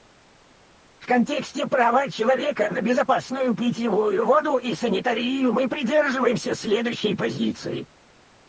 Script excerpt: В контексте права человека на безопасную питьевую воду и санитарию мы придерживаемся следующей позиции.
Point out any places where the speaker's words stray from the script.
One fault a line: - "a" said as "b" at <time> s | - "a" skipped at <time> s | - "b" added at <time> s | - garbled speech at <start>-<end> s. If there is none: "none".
none